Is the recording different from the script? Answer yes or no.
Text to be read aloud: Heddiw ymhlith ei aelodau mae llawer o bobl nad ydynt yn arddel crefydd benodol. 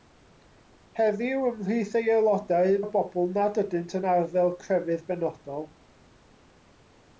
yes